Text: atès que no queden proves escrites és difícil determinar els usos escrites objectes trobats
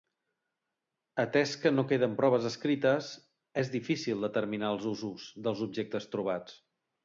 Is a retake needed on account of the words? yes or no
yes